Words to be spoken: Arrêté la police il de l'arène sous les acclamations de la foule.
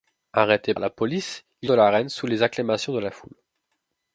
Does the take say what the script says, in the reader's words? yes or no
yes